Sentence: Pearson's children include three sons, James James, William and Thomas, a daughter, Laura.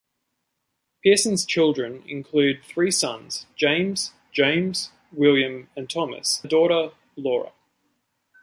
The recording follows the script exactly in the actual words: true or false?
true